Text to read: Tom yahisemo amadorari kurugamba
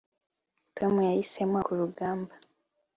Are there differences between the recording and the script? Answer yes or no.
yes